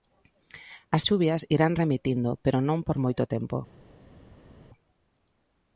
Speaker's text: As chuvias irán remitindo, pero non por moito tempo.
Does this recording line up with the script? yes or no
yes